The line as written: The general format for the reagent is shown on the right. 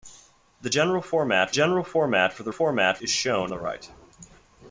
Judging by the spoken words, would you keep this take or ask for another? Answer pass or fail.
fail